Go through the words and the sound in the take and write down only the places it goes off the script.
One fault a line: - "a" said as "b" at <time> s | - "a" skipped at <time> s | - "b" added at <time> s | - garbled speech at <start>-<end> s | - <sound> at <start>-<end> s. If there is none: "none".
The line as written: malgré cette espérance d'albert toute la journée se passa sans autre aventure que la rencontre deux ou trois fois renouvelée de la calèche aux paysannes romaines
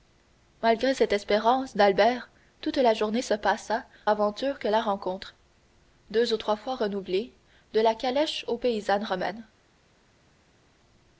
- "sans autre" skipped at 3.9 s